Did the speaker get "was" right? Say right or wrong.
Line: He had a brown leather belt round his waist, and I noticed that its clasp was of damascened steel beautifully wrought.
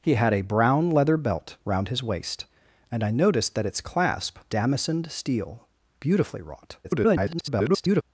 wrong